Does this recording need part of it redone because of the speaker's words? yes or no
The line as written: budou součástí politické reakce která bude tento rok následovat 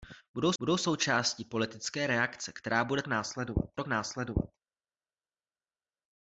yes